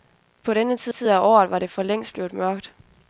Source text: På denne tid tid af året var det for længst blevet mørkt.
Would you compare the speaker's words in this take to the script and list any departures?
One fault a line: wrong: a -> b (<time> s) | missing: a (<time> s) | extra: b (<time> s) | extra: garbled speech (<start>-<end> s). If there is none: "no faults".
no faults